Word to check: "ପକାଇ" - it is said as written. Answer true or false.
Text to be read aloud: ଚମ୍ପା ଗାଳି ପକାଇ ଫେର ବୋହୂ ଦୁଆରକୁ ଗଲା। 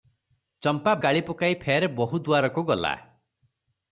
true